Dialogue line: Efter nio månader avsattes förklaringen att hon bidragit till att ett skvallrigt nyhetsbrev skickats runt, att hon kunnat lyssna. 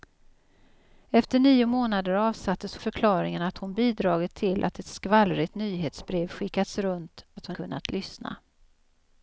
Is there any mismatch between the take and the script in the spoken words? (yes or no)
no